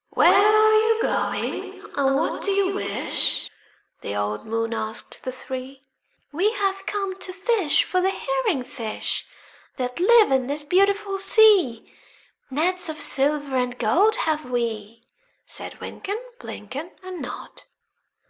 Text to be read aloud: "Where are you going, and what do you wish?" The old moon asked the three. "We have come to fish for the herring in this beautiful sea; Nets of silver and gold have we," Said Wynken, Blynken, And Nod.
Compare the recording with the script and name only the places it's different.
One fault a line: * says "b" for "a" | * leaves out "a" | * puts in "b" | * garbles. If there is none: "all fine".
* puts in "fish That live"